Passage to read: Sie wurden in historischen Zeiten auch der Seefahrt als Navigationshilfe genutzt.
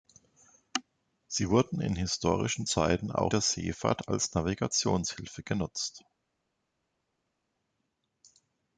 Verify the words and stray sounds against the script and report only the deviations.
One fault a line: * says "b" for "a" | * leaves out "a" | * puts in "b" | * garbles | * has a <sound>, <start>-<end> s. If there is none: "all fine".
all fine